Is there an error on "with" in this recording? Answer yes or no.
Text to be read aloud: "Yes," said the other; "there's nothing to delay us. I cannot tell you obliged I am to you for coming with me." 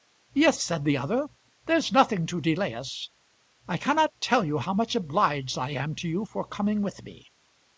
no